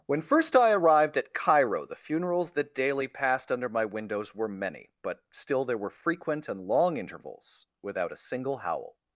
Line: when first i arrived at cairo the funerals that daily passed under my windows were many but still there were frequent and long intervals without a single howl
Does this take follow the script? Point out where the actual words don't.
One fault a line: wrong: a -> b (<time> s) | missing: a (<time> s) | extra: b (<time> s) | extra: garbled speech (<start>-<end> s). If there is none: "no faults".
no faults